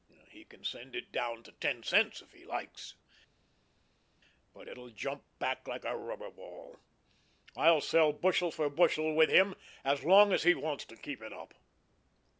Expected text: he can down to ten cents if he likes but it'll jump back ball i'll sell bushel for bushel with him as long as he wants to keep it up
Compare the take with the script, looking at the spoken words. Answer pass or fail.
fail